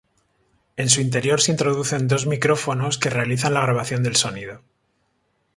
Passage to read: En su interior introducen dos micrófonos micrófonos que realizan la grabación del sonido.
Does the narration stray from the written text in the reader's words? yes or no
yes